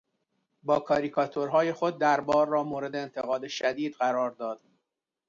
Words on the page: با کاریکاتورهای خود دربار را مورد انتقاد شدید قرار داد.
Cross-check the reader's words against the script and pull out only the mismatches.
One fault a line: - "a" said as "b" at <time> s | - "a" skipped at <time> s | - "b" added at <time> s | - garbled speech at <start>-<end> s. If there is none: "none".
none